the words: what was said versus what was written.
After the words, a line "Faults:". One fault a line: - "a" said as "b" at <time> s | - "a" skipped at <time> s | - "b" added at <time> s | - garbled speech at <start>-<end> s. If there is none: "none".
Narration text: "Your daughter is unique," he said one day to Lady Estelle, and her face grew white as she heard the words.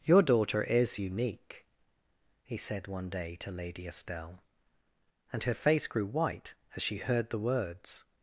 "Your daughter is unique," he said one day to Lady Estelle, and her face grew white as she heard the words.
Faults:
none